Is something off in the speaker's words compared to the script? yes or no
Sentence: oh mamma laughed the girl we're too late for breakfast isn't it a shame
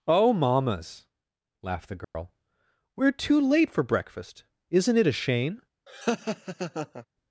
yes